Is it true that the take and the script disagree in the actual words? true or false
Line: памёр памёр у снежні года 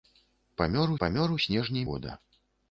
false